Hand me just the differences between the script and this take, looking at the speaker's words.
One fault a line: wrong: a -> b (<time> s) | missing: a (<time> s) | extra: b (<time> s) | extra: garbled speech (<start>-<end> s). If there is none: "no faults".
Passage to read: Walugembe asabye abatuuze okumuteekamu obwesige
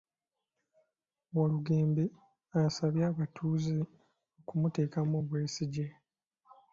no faults